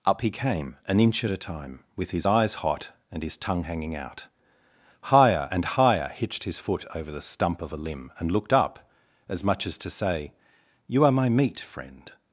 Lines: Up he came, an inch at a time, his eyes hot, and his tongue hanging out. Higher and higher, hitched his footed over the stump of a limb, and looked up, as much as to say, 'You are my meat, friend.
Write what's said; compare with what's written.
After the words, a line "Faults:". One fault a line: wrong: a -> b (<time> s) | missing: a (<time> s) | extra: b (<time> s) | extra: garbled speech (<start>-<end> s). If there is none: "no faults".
Up he came, an inch at a time, with his eyes hot, and his tongue hanging out. Higher and higher, hitched his foot over the stump of a limb, and looked up, as much as to say, 'You are my meat, friend.
Faults:
extra: with (2.0 s)
wrong: footed -> foot (6.6 s)